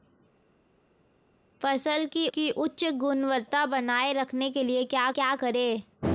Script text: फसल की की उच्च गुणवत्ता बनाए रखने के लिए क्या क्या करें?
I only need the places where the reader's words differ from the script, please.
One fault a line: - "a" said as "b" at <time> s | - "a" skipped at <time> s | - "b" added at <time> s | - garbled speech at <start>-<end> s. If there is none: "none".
none